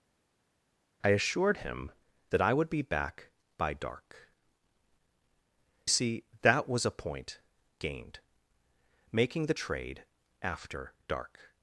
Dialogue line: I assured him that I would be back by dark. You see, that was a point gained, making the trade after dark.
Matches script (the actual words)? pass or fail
fail